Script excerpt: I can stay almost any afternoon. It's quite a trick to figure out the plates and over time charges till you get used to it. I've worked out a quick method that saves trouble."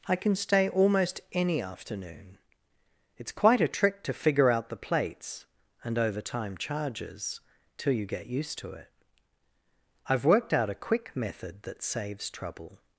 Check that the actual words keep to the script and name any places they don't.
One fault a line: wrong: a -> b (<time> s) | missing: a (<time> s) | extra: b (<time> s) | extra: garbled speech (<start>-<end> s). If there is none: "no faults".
no faults